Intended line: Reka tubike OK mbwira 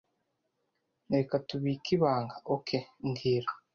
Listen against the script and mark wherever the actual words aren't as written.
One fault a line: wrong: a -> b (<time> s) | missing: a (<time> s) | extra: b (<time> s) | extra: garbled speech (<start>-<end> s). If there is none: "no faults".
extra: ibanga (2.0 s)